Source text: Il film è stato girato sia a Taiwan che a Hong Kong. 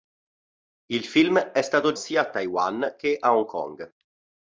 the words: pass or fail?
fail